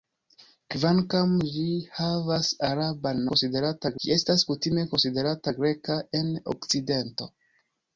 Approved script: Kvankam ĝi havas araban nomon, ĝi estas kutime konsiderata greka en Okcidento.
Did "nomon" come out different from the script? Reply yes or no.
yes